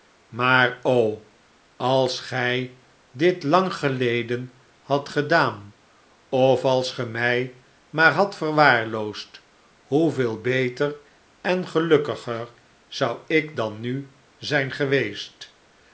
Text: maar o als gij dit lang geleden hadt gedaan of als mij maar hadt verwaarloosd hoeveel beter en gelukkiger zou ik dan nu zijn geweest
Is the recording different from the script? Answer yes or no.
yes